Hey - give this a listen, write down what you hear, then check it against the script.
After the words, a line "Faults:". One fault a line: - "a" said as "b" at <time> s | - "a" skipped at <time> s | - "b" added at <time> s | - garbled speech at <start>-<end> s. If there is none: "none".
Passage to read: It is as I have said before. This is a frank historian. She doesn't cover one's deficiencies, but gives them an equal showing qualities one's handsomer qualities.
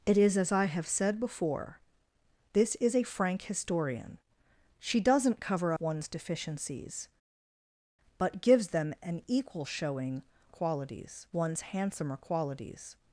It is as I have said before. This is a frank historian. She doesn't cover one's deficiencies, but gives them an equal showing qualities one's handsomer qualities.
Faults:
none